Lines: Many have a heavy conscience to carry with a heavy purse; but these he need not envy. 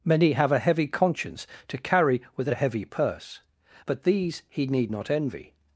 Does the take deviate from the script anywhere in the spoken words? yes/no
no